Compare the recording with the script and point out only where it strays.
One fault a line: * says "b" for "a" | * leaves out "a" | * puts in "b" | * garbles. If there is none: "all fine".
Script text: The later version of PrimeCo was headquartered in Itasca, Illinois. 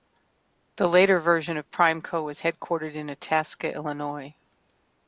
all fine